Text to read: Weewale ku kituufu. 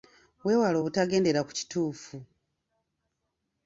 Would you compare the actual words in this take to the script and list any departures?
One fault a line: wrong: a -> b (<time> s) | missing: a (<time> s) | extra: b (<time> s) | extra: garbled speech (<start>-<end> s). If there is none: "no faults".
extra: obutagendera (0.8 s)